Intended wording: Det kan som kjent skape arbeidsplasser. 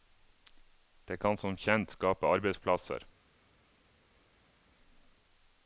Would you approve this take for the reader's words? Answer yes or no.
yes